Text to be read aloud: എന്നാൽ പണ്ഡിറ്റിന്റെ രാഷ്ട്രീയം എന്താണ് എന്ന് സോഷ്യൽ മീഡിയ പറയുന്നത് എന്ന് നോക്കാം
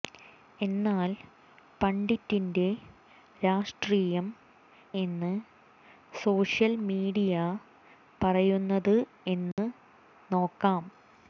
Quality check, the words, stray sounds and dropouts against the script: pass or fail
fail